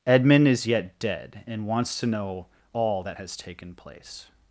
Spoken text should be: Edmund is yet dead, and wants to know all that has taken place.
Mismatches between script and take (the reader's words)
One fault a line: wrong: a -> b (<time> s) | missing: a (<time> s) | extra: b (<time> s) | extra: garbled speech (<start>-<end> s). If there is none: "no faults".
no faults